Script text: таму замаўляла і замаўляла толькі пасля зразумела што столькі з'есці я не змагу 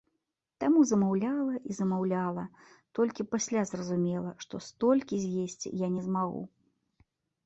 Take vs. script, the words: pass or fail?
pass